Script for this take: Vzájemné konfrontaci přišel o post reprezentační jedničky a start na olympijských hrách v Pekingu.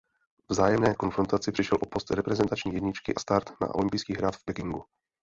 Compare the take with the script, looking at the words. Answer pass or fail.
pass